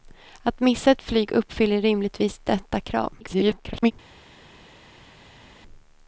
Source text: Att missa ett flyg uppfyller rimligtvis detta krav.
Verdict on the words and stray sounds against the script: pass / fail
fail